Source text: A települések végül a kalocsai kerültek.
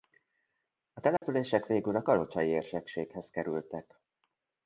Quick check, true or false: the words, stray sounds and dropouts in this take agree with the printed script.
false